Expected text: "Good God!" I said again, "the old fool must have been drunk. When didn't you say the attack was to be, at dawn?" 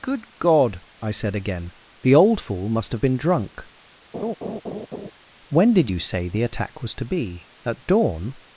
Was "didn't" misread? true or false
true